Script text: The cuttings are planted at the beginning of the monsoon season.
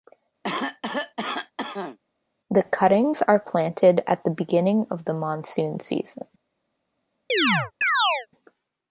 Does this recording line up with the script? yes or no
yes